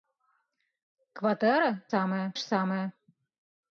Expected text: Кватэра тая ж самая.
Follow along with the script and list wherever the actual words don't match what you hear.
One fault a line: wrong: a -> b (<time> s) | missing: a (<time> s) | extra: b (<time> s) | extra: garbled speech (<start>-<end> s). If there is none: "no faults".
wrong: тая -> самая (1.9 s)